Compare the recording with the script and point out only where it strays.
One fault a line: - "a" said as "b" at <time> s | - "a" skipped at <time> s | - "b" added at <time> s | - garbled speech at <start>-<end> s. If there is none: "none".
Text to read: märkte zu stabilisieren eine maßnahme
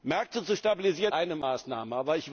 none